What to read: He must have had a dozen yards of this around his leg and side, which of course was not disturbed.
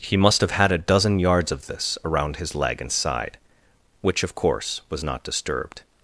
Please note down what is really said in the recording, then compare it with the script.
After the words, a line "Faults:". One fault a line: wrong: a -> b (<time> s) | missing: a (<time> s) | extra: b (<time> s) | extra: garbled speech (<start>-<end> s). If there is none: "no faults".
He must have had a dozen yards of this around his leg and side, which of course was not disturbed.
Faults:
no faults